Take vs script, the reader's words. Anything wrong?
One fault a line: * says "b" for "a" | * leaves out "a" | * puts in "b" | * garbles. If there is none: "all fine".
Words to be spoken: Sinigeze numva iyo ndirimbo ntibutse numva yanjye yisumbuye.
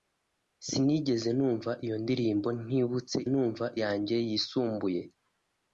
all fine